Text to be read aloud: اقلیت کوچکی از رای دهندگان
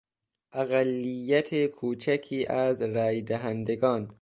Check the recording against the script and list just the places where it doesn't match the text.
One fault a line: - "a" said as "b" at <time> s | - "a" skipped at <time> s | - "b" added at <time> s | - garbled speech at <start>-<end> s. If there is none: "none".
none